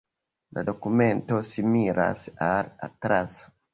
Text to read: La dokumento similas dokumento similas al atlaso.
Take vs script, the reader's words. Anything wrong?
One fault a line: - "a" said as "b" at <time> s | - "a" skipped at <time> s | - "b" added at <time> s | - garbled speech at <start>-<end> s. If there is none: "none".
- "dokumento similas" skipped at 2.3 s